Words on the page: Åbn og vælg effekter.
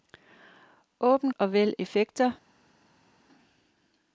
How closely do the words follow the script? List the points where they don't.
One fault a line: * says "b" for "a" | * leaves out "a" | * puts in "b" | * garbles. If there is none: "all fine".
all fine